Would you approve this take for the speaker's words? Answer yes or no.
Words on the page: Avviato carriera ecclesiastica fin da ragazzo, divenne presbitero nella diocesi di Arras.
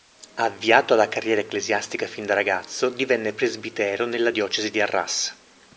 no